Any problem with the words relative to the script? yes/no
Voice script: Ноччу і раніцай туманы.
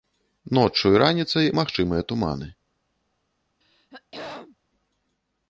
yes